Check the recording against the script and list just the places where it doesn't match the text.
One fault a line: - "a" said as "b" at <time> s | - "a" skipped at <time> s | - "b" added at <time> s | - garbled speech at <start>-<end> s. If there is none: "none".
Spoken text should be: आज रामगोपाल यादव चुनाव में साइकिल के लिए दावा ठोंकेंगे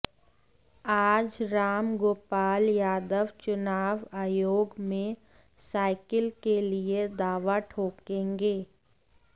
- "आयोग" added at 4.2 s